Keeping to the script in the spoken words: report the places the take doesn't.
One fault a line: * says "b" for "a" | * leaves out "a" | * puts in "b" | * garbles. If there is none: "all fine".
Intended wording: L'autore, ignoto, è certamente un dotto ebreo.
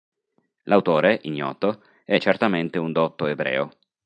all fine